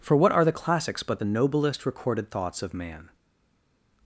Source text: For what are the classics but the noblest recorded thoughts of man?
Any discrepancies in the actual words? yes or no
no